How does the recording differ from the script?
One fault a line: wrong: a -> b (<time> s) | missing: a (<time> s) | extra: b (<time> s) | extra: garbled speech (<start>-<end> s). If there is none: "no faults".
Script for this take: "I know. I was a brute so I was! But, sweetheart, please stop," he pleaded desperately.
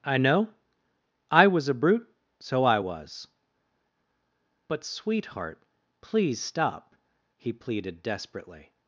no faults